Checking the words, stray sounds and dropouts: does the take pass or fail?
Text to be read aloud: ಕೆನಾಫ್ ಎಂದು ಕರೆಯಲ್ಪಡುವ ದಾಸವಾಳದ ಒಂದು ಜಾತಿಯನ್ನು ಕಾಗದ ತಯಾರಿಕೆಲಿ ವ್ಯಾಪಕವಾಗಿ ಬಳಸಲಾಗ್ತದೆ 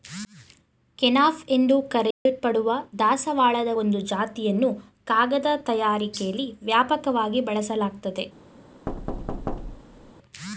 fail